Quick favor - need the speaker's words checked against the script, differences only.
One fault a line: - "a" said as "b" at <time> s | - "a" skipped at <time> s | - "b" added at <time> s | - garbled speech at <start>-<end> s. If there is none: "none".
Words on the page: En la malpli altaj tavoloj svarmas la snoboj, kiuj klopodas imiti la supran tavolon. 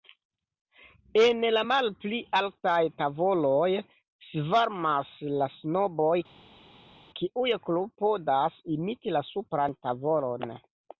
none